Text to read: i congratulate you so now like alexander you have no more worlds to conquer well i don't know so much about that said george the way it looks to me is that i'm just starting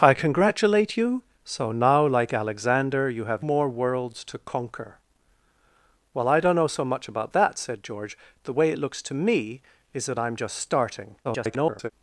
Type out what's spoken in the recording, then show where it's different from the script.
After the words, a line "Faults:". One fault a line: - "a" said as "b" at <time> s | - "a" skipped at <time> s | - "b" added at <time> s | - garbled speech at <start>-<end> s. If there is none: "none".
i congratulate you so now like alexander you have more worlds to conquer well i don't know so much about that said george the way it looks to me is that i'm just starting [garbled]
Faults:
- "no" skipped at 3.5 s
- garbled speech at 11.2-11.9 s